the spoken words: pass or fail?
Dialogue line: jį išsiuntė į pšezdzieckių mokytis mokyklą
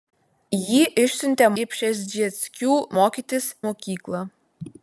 pass